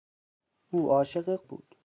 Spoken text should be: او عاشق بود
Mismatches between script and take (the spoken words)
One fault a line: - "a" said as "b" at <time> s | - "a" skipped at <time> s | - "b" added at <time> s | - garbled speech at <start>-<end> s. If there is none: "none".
none